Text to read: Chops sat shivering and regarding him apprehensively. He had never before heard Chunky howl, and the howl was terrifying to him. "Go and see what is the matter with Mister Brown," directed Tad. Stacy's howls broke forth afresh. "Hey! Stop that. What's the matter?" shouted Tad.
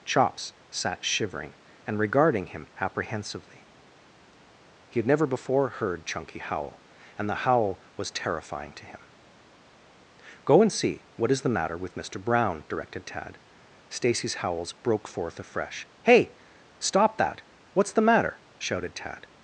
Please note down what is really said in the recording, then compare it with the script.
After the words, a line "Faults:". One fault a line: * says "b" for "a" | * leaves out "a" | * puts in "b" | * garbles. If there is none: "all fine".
Chops sat shivering and regarding him apprehensively. He had never before heard Chunky howl, and the howl was terrifying to him. "Go and see what is the matter with Mister Brown," directed Tad. Stacy's howls broke forth afresh. "Hey! Stop that. What's the matter?" shouted Tad.
Faults:
all fine